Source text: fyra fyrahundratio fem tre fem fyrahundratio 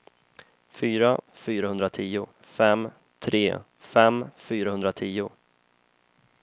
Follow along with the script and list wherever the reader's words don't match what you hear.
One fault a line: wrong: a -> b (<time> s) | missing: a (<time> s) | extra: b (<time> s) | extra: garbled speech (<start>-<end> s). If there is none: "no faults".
no faults